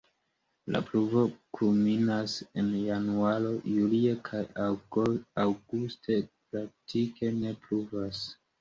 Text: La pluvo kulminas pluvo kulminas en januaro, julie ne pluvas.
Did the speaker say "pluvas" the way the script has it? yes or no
yes